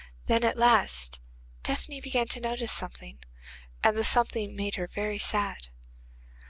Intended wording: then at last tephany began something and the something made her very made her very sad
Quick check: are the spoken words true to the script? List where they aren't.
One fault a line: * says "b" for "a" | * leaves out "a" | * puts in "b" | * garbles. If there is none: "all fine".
* puts in "to notice"
* leaves out "made her very"